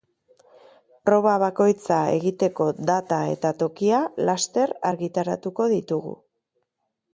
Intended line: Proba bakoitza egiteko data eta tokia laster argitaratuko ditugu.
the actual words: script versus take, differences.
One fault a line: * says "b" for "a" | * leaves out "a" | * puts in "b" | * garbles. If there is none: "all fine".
all fine